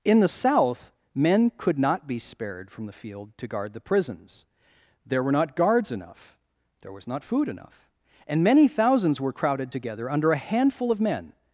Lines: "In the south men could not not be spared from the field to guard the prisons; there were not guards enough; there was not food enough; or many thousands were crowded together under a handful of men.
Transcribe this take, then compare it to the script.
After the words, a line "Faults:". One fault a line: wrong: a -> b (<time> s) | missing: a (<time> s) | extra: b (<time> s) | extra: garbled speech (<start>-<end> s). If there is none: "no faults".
"In the south men could not be spared from the field to guard the prisons; there were not guards enough; there was not food enough; and many thousands were crowded together under a handful of men.
Faults:
missing: not (2.1 s)
wrong: or -> and (8.2 s)